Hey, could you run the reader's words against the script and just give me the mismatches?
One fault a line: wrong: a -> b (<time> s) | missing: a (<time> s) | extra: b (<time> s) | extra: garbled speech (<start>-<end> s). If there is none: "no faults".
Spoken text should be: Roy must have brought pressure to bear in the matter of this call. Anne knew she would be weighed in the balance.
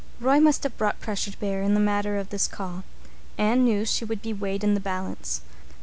no faults